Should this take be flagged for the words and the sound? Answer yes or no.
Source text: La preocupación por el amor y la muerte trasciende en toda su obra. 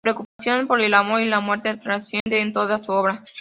yes